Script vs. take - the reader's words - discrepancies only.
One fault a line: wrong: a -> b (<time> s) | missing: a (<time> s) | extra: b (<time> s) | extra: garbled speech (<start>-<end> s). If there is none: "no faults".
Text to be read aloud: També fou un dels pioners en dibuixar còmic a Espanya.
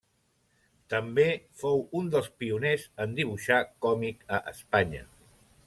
no faults